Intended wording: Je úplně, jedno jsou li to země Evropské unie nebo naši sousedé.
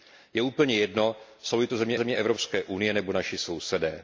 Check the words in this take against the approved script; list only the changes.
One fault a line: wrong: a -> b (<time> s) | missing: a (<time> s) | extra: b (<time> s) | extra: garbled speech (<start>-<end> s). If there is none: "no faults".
extra: země (2.0 s)